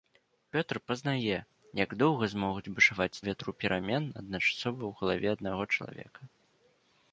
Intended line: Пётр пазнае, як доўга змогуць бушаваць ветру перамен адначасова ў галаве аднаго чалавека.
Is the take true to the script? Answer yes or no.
yes